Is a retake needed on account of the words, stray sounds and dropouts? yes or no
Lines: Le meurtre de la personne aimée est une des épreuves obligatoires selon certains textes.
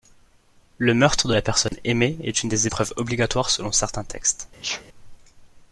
yes